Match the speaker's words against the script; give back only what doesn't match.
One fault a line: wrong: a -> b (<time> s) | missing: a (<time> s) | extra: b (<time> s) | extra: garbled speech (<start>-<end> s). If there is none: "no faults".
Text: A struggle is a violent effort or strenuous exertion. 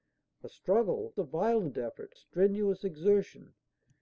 missing: is (1.1 s)
missing: or (2.1 s)